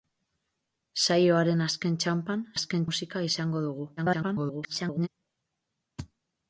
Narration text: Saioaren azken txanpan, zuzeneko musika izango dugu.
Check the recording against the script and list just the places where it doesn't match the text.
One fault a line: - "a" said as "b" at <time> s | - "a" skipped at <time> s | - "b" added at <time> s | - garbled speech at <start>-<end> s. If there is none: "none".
- "zuzeneko" said as "azken" at 2.6 s
- garbled speech at 4.0-5.1 s